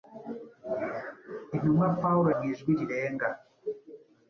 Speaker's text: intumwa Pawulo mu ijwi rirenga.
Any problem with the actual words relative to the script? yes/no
no